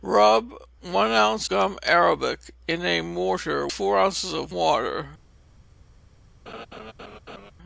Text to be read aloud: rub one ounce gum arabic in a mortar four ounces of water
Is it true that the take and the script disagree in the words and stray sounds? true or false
true